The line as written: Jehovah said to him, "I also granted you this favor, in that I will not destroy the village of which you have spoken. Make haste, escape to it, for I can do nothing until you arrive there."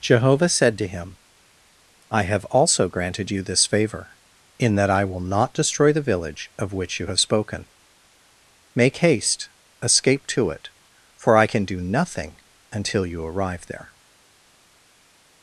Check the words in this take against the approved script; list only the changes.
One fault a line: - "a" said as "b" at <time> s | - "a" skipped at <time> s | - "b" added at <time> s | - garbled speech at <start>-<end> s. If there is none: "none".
- "have" added at 2.2 s